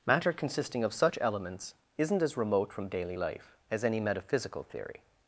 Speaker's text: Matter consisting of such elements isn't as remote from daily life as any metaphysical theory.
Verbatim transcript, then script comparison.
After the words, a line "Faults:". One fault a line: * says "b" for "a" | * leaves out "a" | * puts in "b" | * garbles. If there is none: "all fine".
Matter consisting of such elements isn't as remote from daily life as any metaphysical theory.
Faults:
all fine